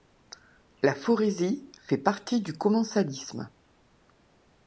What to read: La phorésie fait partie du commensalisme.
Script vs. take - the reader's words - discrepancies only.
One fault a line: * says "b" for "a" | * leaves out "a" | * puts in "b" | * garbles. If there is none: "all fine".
all fine